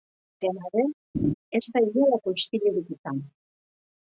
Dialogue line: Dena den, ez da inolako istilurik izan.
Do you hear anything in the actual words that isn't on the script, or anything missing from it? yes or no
no